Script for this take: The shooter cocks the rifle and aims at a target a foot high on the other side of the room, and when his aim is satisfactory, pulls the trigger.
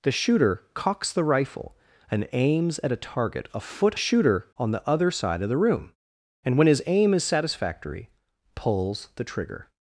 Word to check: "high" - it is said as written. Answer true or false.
false